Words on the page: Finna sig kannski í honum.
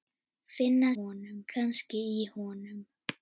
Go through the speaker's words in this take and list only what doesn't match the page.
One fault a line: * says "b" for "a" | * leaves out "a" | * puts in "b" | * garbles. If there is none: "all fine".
* says "honum" for "sig"